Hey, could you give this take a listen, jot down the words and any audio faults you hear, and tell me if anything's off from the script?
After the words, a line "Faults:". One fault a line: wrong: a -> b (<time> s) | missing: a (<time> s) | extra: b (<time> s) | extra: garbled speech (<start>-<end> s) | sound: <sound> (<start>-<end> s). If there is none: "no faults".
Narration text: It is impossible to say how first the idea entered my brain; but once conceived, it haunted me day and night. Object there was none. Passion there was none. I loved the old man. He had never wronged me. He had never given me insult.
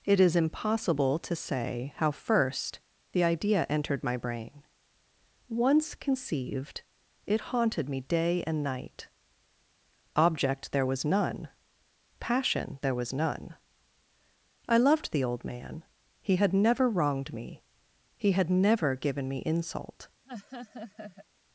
It is impossible to say how first the idea entered my brain; once conceived, it haunted me day and night. Object there was none. Passion there was none. I loved the old man. He had never wronged me. He had never given me insult.
Faults:
missing: but (4.6 s)
sound: laugh (20.3-21.3 s)